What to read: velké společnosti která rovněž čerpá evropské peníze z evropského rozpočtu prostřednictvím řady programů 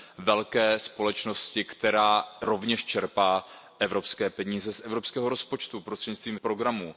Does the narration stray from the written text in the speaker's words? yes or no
yes